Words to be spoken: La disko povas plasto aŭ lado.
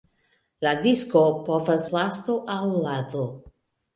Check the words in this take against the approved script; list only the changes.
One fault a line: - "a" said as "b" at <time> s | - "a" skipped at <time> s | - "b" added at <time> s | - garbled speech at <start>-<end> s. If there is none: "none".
none